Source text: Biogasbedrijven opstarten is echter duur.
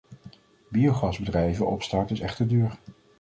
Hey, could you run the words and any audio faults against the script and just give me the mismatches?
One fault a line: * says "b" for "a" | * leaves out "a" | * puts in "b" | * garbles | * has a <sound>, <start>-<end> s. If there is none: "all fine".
all fine